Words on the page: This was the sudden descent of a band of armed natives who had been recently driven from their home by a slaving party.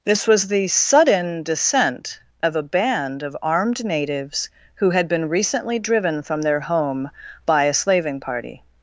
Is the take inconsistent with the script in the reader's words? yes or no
no